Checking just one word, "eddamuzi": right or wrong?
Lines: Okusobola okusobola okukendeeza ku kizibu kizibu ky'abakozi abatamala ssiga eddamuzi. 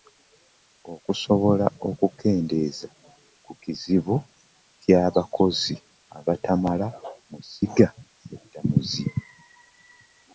right